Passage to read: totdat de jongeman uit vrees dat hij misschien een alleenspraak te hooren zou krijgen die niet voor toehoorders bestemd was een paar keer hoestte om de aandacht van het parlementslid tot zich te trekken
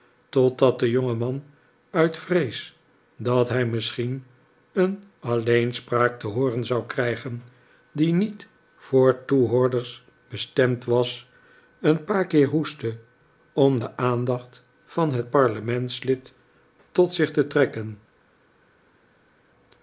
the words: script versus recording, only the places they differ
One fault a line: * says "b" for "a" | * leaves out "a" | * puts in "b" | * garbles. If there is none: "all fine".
all fine